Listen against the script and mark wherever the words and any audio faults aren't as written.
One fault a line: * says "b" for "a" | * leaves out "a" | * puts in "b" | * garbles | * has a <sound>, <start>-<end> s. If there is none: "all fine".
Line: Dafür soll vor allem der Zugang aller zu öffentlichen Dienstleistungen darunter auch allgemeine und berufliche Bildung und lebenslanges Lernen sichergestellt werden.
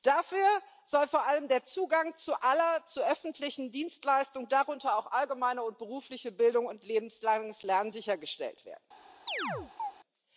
* has a chirp, 9.3-9.9 s